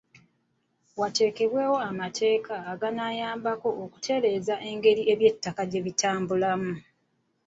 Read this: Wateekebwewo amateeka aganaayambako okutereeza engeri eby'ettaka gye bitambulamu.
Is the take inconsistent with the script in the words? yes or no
no